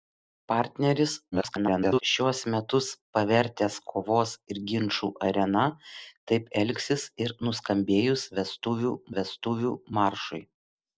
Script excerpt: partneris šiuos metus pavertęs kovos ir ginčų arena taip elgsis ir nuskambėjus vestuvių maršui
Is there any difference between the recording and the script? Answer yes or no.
yes